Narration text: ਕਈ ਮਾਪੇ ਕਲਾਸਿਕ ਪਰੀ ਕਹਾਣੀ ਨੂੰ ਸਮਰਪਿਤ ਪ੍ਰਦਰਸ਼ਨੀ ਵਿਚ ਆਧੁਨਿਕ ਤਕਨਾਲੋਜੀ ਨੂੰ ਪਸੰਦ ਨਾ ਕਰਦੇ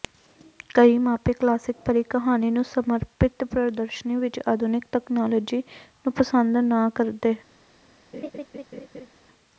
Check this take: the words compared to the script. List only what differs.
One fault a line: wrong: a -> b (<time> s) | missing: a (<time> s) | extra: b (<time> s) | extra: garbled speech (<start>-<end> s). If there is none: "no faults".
no faults